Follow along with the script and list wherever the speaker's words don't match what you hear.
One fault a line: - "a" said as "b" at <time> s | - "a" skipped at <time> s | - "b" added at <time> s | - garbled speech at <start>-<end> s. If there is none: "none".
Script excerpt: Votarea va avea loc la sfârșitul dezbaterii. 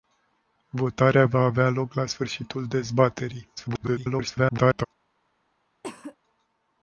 - garbled speech at 3.6-4.9 s